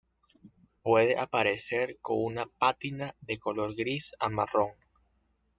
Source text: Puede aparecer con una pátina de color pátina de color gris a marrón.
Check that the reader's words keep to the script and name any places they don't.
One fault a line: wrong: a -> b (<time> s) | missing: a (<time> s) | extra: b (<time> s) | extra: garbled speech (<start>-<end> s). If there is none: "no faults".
missing: pátina de color (3.8 s)